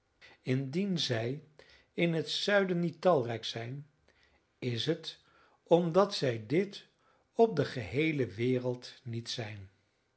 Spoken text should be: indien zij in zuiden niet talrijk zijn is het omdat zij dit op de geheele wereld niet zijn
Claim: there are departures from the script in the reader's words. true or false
true